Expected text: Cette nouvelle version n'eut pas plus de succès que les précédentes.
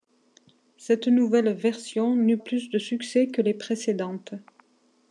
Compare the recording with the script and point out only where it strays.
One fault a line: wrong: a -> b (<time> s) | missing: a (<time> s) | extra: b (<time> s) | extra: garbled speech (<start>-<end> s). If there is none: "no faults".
missing: pas (2.4 s)